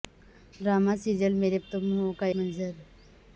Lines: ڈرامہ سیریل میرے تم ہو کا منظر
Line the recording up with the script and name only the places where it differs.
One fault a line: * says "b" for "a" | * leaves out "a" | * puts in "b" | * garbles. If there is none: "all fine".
all fine